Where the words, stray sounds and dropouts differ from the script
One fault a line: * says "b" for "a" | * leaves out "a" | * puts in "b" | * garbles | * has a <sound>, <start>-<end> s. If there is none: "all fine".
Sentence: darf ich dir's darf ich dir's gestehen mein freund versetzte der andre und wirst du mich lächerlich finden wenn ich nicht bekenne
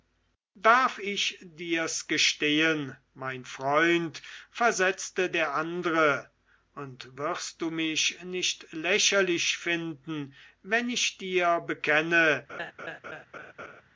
* leaves out "darf ich dir's"
* puts in "nicht"
* says "dir" for "nicht"
* has a laugh, 12.5-13.8 s